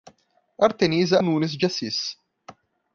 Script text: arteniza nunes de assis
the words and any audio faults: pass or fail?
pass